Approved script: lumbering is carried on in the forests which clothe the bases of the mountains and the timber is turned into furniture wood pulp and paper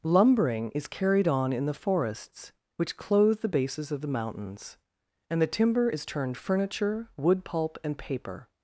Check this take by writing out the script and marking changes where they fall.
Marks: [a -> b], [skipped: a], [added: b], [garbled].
lumbering is carried on in the forests which clothe the bases of the mountains and the timber is turned [skipped: into] furniture wood pulp and paper